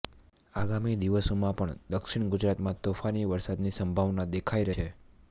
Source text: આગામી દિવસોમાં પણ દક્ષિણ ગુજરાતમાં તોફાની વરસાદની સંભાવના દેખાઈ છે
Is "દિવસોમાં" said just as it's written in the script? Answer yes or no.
yes